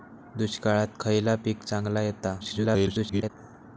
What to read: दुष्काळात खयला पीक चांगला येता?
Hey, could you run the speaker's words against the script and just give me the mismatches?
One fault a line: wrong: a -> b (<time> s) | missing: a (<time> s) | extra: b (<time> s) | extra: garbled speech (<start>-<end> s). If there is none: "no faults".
extra: garbled speech (2.4-3.3 s)